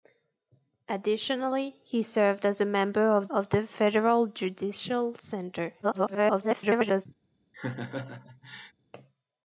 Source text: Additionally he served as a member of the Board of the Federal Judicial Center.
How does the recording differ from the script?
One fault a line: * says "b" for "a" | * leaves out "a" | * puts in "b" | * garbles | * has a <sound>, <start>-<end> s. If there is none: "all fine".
* leaves out "the Board"
* garbles
* has a laugh, 7.5-8.7 s